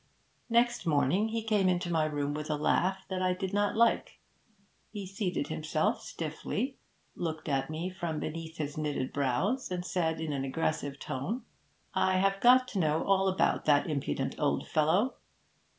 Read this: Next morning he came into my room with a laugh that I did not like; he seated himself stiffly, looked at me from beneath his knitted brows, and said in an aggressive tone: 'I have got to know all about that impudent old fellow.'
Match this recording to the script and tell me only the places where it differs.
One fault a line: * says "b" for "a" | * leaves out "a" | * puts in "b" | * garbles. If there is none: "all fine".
all fine